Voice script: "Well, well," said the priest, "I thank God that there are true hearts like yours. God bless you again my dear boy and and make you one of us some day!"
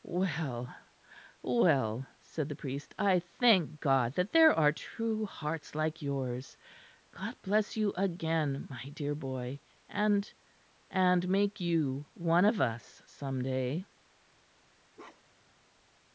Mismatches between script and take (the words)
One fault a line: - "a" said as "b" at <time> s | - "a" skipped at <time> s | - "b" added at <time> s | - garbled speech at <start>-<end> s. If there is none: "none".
none